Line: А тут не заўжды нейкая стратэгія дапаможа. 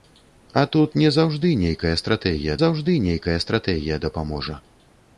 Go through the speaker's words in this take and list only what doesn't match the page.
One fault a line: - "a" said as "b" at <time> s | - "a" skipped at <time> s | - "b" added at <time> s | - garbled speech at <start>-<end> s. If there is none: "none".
- "заўжды нейкая стратэгія" added at 2.6 s